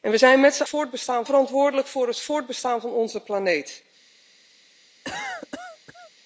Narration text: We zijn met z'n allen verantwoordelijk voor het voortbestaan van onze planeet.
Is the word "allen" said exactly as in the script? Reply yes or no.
no